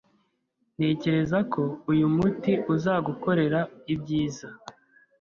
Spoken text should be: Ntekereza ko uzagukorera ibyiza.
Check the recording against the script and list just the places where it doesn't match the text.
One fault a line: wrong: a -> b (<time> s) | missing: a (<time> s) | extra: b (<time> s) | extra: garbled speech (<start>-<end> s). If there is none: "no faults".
extra: uyu muti (1.9 s)